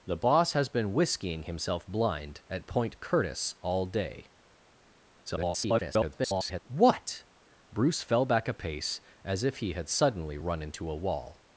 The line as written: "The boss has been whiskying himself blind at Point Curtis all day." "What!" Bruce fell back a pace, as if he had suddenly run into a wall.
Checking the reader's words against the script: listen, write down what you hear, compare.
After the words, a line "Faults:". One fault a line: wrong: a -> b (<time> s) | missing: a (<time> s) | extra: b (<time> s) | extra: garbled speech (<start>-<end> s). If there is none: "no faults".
"The boss has been whiskying himself blind at Point Curtis all day." [garbled] "What!" Bruce fell back a pace, as if he had suddenly run into a wall.
Faults:
extra: garbled speech (5.3-6.6 s)